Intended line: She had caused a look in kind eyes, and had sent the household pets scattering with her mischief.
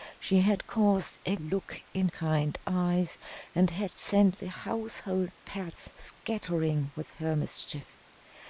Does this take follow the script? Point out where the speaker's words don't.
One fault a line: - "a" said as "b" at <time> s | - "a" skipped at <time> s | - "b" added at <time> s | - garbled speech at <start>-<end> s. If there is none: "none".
none